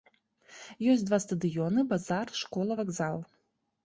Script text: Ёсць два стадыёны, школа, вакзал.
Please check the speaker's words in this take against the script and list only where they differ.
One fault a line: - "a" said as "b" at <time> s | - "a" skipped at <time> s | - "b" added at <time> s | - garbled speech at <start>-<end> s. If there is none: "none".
- "базар" added at 1.9 s